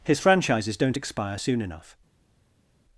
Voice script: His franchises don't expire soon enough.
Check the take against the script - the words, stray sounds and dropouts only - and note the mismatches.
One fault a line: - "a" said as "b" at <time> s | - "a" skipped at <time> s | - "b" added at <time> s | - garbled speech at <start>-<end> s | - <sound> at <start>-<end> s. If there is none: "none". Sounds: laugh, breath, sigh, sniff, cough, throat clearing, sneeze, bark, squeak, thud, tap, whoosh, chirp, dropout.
none